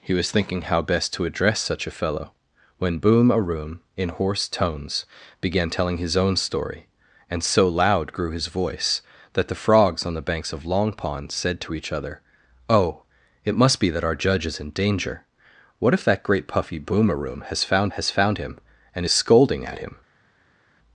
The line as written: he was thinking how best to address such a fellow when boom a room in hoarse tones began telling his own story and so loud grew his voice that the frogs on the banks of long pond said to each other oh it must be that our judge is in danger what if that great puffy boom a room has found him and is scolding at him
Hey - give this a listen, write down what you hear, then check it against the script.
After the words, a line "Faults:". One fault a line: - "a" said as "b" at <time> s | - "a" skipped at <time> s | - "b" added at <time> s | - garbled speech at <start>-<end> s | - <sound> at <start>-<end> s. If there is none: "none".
he was thinking how best to address such a fellow when boom a room in hoarse tones began telling his own story and so loud grew his voice that the frogs on the banks of long pond said to each other oh it must be that our judge is in danger what if that great puffy boom a room has found has found him and is scolding at him
Faults:
- "has found" added at 17.9 s